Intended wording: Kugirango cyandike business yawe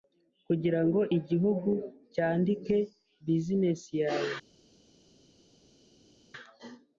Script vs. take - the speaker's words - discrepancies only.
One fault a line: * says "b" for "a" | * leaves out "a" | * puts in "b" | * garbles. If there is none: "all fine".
* puts in "igihugu"